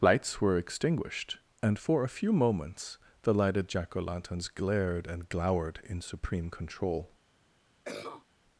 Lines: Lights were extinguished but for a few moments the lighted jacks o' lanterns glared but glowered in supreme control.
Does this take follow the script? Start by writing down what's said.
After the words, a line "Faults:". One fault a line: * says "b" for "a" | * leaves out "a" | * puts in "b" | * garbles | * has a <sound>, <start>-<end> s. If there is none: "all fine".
Lights were extinguished and for a few moments the lighted jack o' lanterns glared and glowered in supreme control.
Faults:
* says "and" for "but"
* says "jack" for "jacks"
* says "and" for "but"
* has a cough, 7.8-8.3 s